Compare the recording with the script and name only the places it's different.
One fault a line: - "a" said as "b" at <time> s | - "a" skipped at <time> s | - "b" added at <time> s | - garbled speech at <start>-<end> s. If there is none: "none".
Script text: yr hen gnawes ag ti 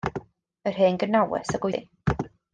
none